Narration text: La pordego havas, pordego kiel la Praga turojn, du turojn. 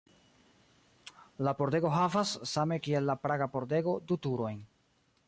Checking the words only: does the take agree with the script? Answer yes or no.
no